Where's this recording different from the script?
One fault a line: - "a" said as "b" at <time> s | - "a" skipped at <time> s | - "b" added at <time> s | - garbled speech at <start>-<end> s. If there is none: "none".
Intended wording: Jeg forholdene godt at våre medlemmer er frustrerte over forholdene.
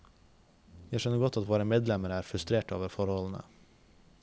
- "forholdene" said as "skjønner" at 1.0 s